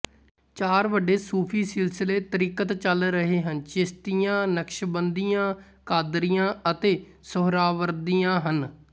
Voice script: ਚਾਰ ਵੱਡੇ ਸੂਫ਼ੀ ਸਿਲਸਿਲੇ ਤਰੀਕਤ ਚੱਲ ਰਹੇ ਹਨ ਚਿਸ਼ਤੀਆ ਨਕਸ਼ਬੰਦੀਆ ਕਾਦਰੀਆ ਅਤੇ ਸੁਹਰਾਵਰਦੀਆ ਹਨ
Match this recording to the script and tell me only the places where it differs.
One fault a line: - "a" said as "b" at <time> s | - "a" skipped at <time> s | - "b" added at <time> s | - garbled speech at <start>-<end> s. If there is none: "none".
none